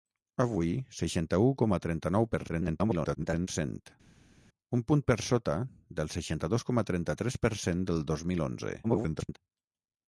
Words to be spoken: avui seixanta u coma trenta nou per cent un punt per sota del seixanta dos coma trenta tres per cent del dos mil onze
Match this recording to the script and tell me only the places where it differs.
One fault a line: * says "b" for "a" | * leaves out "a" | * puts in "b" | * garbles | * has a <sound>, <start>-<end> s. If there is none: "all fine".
* garbles
* garbles